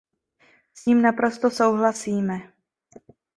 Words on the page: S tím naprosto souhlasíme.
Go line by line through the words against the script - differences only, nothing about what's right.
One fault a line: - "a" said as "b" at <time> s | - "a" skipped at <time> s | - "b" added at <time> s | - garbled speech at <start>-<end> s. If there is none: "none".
none